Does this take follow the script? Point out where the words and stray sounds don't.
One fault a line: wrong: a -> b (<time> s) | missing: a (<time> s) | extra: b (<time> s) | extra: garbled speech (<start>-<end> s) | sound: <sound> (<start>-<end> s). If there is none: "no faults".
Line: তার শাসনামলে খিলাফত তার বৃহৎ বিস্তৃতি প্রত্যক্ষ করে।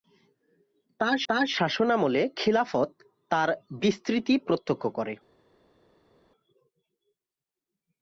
extra: তার (1.3 s)
missing: বৃহৎ (3.5 s)